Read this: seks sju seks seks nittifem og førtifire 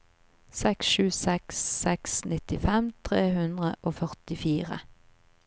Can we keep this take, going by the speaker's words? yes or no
no